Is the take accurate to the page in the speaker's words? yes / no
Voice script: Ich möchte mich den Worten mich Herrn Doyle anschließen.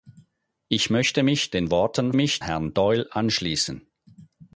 yes